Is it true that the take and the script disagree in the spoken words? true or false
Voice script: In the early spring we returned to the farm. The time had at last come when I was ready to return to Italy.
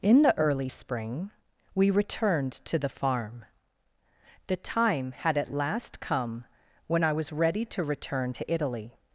false